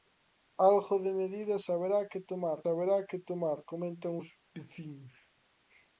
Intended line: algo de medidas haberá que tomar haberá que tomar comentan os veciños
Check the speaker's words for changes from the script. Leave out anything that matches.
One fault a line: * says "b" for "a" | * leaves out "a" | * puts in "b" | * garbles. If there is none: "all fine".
all fine